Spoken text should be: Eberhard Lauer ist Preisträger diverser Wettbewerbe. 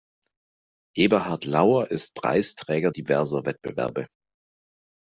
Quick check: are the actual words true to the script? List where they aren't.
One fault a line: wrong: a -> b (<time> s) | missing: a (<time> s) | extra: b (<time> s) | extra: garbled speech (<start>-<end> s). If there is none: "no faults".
no faults